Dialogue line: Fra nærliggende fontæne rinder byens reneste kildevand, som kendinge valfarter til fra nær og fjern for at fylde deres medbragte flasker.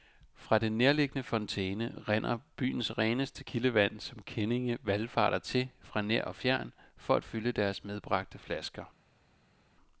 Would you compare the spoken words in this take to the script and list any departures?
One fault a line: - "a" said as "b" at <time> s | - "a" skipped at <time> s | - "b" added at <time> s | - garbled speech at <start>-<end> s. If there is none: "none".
- "den" added at 0.6 s